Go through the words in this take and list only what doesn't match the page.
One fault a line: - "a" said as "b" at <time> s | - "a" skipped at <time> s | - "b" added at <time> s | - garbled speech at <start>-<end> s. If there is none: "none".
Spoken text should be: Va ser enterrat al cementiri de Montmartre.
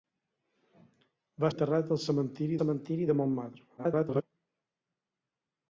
- "ser" skipped at 1.5 s
- "cementiri" added at 2.6 s
- garbled speech at 3.8-4.2 s